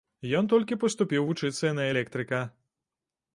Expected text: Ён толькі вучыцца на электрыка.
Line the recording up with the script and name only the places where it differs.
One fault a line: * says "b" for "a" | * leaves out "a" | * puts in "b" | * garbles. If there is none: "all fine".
* puts in "паступіў"